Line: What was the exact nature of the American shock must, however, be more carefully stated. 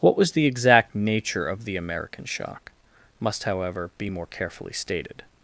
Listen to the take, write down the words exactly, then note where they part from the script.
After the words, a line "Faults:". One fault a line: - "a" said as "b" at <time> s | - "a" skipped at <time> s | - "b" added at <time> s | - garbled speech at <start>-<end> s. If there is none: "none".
What was the exact nature of the American shock must, however, be more carefully stated.
Faults:
none